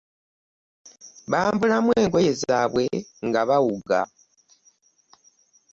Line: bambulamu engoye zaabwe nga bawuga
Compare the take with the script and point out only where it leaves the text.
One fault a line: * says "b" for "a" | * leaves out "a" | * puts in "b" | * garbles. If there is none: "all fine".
all fine